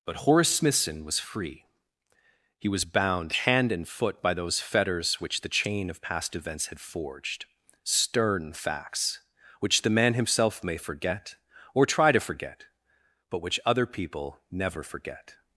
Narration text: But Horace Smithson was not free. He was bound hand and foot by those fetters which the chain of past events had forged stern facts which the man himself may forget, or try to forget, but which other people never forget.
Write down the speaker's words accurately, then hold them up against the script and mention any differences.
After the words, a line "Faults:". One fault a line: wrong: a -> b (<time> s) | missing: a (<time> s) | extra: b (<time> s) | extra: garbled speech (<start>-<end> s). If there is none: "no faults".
But Horace Smithson was free. He was bound hand and foot by those fetters which the chain of past events had forged stern facts which the man himself may forget, or try to forget, but which other people never forget.
Faults:
missing: not (1.2 s)